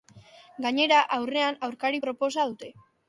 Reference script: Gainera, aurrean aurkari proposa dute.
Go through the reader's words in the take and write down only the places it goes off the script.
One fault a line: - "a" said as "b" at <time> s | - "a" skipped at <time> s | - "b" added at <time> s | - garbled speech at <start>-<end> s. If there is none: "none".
none